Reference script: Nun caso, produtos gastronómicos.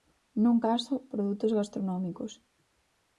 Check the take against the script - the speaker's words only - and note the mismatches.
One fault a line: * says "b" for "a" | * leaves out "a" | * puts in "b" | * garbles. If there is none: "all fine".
all fine